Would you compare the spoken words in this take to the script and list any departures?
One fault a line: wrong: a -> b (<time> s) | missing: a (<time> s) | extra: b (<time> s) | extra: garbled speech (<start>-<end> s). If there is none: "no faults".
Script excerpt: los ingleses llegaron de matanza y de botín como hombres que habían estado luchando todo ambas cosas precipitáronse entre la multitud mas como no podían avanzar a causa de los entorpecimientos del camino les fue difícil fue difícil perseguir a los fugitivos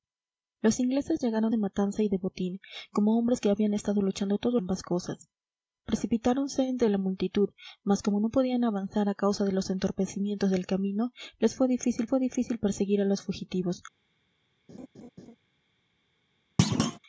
no faults